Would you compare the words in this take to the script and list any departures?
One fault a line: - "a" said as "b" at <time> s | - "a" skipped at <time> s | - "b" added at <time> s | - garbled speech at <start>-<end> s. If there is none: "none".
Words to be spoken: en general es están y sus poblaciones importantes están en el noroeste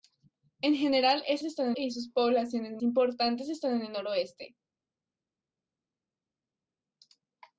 none